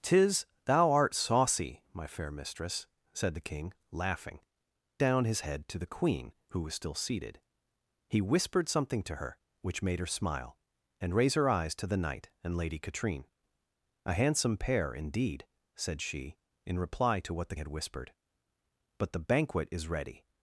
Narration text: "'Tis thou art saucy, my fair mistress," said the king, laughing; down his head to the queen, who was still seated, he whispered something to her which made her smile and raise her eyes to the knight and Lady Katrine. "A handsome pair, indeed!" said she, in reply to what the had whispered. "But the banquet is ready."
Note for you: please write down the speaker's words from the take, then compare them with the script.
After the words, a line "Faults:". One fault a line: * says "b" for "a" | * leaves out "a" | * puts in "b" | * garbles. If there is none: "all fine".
"'Tis thou art saucy, my fair mistress," said the king, laughing; down his head to the queen, who was still seated, he whispered something to her which made her smile and raise her eyes to the knight and Lady Katrine. "A handsome pair, indeed!" said she, in reply to what the had whispered. "But the banquet is ready."
Faults:
all fine